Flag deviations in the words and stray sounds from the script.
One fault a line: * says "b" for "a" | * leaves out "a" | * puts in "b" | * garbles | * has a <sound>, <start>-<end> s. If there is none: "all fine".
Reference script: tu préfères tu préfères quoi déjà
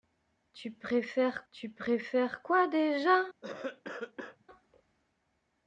* has a cough, 3.4-4.4 s